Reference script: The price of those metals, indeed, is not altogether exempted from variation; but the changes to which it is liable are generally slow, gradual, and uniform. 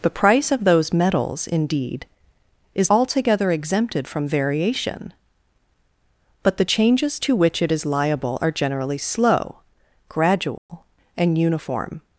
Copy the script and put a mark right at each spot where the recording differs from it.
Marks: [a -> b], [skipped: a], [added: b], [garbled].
The price of those metals, indeed, is [skipped: not] altogether exempted from variation; but the changes to which it is liable are generally slow, gradual, and uniform.